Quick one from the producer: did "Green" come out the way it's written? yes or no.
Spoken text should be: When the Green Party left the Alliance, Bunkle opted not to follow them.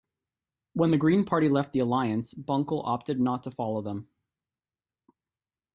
yes